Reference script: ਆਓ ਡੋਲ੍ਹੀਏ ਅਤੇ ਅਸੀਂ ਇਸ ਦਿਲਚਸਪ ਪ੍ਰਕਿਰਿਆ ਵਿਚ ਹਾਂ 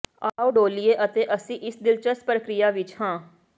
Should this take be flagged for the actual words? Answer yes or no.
no